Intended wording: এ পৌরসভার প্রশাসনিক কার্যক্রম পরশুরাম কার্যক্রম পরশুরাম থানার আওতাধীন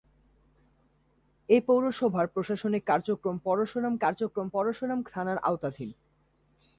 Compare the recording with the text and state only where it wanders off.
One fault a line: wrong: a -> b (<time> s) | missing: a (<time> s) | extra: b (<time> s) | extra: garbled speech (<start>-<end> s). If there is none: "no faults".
no faults